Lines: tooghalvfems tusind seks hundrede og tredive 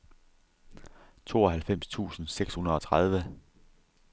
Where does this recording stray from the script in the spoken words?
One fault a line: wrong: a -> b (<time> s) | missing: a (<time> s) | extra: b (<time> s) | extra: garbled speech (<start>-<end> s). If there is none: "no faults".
no faults